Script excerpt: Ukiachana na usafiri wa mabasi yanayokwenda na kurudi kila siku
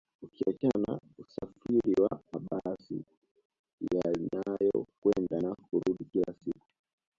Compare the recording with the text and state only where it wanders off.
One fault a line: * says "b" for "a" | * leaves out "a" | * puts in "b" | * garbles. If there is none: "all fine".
all fine